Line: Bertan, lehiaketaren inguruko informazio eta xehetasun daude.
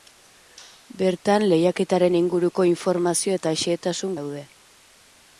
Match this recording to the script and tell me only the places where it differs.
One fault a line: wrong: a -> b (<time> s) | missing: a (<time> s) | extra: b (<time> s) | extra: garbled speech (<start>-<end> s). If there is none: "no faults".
no faults